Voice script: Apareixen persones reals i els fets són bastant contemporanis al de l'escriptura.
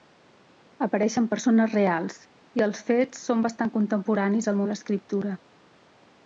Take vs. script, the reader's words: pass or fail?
pass